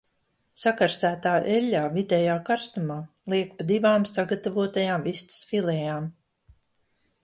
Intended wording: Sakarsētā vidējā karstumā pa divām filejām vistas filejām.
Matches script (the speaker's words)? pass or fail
fail